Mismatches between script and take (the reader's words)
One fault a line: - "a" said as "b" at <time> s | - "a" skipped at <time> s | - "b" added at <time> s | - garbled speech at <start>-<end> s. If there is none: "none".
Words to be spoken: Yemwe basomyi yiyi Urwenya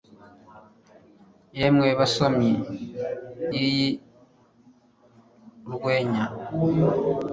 none